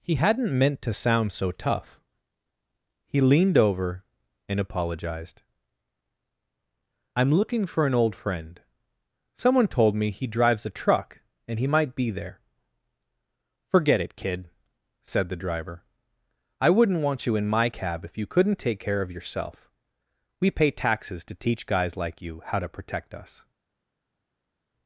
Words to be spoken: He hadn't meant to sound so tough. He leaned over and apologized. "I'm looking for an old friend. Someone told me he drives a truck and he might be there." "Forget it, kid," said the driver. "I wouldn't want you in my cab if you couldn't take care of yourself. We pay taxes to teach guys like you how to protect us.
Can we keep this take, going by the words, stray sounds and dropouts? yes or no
yes